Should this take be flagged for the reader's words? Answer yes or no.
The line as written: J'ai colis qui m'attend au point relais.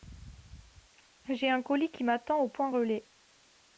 yes